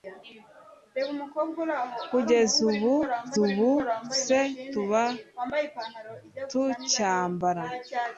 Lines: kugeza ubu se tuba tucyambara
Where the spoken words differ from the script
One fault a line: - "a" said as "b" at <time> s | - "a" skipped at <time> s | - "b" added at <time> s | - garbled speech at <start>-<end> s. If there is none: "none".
- "ubu" added at 3.4 s